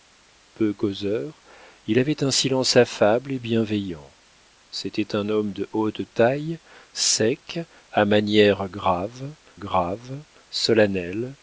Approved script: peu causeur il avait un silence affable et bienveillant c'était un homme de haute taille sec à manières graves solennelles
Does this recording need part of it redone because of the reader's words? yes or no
yes